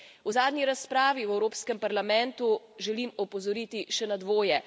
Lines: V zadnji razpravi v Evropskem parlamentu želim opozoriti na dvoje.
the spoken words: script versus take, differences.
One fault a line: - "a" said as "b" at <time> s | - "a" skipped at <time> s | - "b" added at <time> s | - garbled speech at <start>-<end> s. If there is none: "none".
- "še" added at 3.9 s